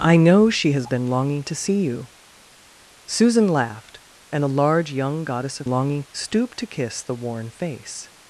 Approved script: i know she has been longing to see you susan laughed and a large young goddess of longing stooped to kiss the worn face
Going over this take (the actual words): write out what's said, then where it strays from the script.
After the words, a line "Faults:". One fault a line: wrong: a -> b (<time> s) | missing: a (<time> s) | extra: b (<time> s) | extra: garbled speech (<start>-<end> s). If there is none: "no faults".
i know she has been longing to see you susan laughed and a large young goddess of longing stooped to kiss the worn face
Faults:
no faults